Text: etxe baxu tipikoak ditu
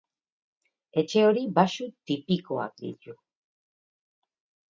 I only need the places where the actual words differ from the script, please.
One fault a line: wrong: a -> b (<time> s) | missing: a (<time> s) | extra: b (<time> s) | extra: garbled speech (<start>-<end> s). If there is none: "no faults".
extra: hori (1.2 s)